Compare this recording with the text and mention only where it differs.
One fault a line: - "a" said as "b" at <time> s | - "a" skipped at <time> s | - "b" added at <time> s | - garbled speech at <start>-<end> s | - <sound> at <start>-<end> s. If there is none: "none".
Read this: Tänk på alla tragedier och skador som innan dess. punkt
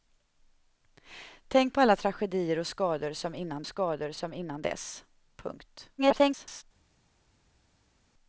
- "skador som innan" added at 3.7 s
- garbled speech at 6.0-6.6 s